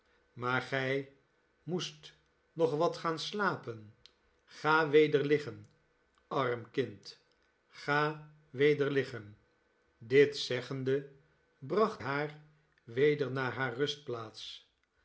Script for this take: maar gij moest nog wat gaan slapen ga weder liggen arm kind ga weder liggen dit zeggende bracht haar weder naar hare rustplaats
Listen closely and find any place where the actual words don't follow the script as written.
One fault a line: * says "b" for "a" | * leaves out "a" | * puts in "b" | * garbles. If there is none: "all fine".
all fine